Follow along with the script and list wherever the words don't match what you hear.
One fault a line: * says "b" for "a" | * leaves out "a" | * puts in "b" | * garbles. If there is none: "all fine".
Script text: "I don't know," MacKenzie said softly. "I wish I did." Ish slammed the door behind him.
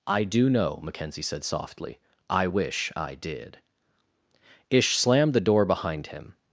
* says "do" for "don't"